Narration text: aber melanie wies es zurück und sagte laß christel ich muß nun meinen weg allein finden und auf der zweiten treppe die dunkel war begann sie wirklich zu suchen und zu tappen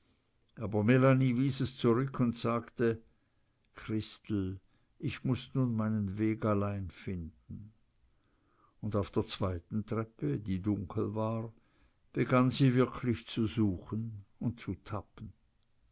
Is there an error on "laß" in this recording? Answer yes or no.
yes